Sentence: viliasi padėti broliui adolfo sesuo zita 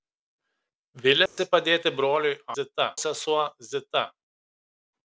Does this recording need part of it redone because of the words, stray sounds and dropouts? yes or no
yes